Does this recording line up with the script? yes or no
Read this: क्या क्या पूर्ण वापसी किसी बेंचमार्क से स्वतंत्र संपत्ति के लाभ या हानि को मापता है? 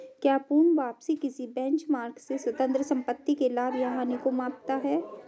no